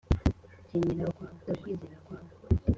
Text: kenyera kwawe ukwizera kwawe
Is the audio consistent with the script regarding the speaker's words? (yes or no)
yes